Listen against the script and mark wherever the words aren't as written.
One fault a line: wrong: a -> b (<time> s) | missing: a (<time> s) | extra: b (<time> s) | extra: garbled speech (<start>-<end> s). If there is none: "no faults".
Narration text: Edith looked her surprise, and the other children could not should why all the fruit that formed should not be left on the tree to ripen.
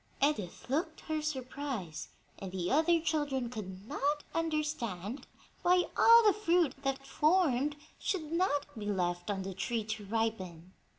wrong: should -> understand (4.3 s)